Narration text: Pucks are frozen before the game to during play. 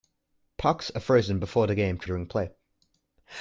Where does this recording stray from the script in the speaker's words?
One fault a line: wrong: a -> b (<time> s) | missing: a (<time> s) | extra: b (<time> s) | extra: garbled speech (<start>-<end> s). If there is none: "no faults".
no faults